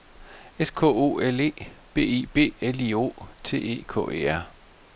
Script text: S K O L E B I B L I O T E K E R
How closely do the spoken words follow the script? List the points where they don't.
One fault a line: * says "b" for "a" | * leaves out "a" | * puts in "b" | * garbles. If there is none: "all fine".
all fine